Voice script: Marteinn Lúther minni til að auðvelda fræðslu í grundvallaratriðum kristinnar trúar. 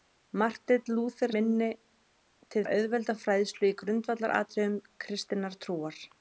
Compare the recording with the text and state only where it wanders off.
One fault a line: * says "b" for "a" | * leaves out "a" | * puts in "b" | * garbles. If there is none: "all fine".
all fine